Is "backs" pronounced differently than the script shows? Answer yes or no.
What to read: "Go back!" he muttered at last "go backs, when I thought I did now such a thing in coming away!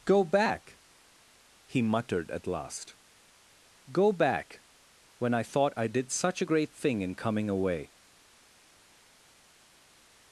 yes